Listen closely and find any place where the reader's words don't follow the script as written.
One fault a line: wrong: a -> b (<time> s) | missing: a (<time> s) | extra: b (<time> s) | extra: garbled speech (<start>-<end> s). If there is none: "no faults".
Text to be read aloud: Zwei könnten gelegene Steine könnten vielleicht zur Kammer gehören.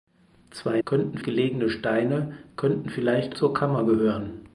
no faults